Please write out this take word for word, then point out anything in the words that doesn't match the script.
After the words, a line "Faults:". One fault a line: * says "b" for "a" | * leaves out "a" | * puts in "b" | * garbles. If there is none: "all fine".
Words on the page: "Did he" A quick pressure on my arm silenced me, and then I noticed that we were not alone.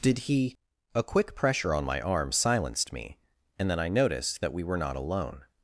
"Did he" A quick pressure on my arm silenced me, and then I noticed that we were not alone.
Faults:
all fine